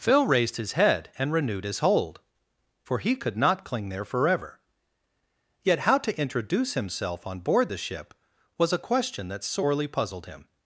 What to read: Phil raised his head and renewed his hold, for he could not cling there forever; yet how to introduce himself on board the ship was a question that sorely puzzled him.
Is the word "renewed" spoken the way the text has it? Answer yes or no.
yes